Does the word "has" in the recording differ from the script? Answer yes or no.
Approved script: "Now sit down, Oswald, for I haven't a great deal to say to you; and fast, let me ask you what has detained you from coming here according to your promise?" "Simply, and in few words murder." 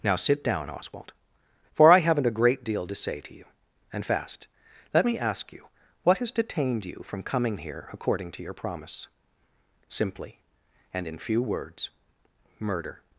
no